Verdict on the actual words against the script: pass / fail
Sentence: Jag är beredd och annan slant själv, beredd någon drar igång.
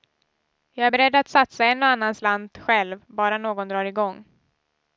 fail